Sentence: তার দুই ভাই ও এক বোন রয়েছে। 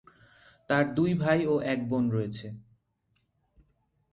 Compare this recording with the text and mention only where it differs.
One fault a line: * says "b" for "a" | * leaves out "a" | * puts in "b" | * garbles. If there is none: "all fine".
all fine